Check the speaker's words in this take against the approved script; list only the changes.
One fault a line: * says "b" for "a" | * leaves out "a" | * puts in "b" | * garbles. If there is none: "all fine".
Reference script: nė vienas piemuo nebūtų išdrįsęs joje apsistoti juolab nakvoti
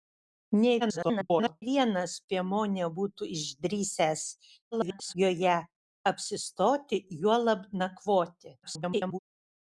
* garbles
* garbles
* garbles